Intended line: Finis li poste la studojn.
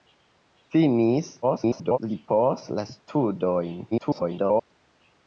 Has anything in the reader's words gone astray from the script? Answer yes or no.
yes